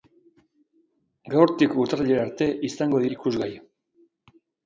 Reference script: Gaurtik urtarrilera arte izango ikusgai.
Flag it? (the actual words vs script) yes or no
no